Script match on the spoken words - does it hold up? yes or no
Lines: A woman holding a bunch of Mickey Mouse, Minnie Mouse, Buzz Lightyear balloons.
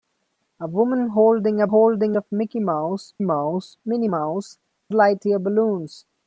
no